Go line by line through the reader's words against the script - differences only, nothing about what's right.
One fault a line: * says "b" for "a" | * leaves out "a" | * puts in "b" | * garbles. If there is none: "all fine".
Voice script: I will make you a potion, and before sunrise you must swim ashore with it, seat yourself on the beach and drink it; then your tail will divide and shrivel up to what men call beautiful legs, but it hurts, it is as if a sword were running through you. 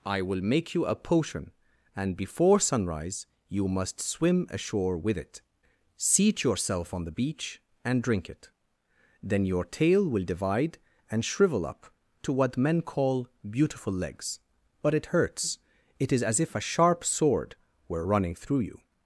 * puts in "sharp"